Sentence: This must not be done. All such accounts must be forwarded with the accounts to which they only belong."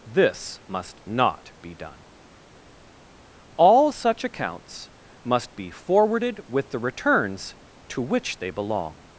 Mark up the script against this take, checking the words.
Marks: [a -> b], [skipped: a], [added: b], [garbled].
This must not be done. All such accounts must be forwarded with the [accounts -> returns] to which they [skipped: only] belong."